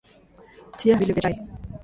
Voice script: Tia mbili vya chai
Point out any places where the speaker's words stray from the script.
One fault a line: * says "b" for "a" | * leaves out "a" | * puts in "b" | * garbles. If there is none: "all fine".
all fine